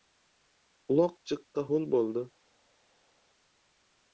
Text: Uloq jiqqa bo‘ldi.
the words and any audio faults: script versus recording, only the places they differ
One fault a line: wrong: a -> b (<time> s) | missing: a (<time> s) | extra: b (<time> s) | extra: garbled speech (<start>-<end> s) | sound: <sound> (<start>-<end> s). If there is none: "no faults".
extra: ho‘l (1.7 s)